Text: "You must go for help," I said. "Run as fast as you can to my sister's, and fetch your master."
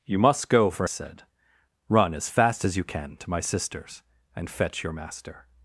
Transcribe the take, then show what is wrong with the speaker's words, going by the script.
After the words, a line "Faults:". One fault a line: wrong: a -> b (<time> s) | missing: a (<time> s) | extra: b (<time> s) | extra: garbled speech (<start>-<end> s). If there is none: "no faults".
"You must go for said. "Run as fast as you can to my sister's, and fetch your master."
Faults:
missing: help I (0.9 s)